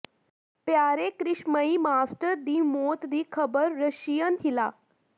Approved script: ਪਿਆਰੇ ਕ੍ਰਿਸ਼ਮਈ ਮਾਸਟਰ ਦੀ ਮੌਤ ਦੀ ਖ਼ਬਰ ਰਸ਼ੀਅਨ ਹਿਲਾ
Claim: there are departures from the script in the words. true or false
false